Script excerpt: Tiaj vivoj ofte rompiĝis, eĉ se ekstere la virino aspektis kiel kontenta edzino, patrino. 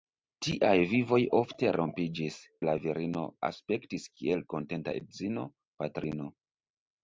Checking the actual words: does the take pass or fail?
fail